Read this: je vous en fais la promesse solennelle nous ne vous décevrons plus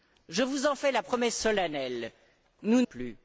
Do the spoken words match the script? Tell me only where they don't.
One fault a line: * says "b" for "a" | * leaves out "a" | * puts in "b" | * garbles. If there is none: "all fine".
* leaves out "ne vous décevrons"